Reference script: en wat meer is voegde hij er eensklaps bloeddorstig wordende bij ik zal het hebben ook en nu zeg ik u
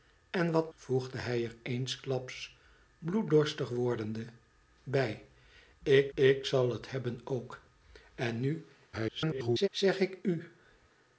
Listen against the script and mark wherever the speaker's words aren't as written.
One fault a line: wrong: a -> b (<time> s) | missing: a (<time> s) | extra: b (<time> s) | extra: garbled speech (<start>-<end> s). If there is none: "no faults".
missing: meer is (0.7 s)
extra: ik (6.1 s)
extra: garbled speech (8.9-9.7 s)